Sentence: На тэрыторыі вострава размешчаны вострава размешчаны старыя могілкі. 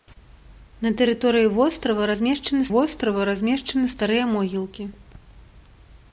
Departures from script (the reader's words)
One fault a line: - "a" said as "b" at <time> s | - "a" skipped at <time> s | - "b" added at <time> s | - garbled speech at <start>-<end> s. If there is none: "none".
none